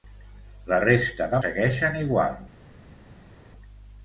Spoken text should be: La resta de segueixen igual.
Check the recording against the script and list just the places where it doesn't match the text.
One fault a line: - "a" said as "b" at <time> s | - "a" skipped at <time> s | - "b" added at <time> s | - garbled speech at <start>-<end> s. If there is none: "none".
none